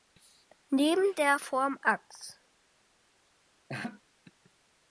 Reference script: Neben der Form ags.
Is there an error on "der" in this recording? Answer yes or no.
no